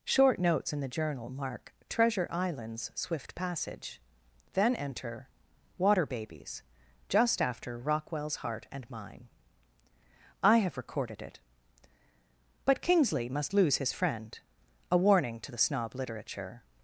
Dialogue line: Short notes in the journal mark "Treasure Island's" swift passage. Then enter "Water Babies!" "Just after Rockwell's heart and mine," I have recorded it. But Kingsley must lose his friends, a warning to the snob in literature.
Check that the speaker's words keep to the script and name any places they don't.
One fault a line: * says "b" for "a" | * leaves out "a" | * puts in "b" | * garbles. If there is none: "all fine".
* says "friend" for "friends"
* leaves out "in"